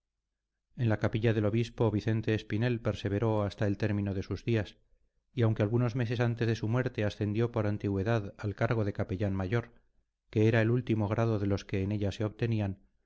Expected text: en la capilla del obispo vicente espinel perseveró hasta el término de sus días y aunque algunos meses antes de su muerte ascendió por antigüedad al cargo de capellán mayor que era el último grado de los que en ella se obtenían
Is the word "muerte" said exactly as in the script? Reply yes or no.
yes